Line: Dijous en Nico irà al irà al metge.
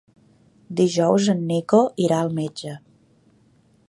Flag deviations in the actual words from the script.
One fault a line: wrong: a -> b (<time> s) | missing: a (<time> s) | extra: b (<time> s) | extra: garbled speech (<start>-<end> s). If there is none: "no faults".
missing: irà al (2.3 s)